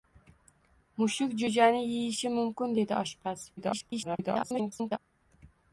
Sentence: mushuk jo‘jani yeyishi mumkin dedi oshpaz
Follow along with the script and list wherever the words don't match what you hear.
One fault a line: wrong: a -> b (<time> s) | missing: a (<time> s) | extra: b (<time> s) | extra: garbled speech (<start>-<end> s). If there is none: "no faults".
extra: garbled speech (3.6-5.0 s)